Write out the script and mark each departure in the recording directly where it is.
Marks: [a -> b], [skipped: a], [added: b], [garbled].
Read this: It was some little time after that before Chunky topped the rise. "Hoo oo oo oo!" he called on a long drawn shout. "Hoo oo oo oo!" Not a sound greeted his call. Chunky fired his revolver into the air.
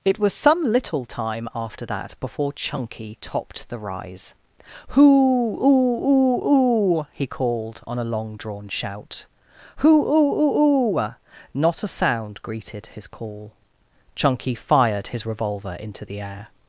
It was some little time after that before Chunky topped the rise. "Hoo oo oo oo!" he called on a long drawn shout. "Hoo oo oo oo!" Not a sound greeted his call. Chunky fired his revolver into the air.